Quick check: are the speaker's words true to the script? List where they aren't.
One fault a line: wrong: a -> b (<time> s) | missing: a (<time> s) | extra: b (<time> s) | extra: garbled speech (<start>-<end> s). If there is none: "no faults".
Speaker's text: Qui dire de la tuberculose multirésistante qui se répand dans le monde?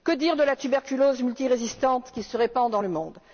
wrong: Qui -> Que (0.0 s)